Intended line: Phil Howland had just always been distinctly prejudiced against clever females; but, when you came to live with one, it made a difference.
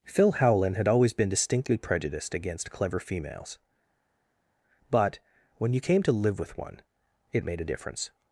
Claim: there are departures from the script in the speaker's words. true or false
true